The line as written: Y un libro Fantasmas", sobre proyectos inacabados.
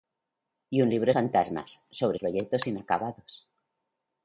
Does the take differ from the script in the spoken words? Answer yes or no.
no